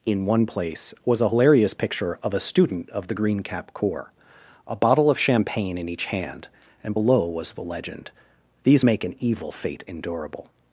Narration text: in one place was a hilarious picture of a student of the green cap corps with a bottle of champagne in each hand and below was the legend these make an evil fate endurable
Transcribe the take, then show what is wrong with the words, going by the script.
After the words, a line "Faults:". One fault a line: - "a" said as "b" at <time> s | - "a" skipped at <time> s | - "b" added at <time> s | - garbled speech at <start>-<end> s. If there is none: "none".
in one place was a hilarious picture of a student of the green cap corps a bottle of champagne in each hand and below was the legend these make an evil fate endurable
Faults:
- "with" skipped at 4.1 s